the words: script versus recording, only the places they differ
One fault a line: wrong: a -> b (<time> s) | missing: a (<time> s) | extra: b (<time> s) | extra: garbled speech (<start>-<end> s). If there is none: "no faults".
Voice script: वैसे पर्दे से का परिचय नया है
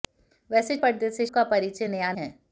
no faults